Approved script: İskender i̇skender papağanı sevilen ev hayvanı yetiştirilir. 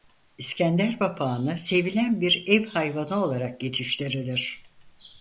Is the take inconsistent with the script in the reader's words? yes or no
yes